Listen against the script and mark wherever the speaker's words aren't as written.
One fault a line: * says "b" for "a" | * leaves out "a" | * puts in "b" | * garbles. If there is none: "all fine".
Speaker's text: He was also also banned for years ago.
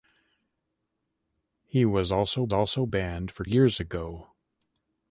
all fine